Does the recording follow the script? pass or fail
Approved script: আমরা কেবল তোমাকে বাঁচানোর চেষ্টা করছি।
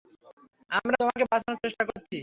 fail